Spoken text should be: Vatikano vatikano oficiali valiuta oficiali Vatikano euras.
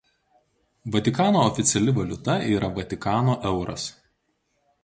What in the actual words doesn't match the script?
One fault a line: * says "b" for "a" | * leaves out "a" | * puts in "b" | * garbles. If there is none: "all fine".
* leaves out "vatikano"
* says "yra" for "oficiali"